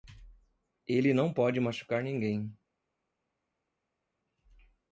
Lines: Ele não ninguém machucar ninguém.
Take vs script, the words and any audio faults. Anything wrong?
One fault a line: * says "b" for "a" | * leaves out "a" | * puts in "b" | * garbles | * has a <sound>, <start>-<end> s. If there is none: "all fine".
* says "pode" for "ninguém"